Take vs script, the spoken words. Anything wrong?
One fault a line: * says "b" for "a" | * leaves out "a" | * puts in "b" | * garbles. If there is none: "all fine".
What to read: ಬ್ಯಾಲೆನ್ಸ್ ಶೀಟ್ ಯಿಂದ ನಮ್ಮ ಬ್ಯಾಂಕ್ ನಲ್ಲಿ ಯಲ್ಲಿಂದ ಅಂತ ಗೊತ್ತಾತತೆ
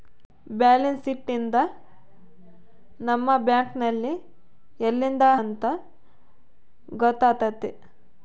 all fine